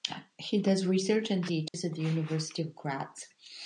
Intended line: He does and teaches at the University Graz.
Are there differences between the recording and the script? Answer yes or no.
yes